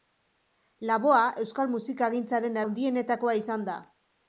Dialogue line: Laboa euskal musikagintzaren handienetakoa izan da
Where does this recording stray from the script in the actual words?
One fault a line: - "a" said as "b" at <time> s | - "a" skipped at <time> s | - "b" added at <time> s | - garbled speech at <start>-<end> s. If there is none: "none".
none